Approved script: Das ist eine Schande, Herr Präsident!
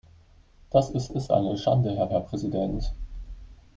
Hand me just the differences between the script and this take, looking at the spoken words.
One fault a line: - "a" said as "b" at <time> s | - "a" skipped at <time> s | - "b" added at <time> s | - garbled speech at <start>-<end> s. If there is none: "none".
- "ist" added at 1.1 s
- "Herr" added at 2.1 s